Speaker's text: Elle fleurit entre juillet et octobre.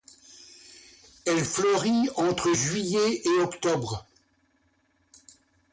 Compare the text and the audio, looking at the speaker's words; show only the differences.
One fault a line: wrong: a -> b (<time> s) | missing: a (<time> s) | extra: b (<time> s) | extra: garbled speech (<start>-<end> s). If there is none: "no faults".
no faults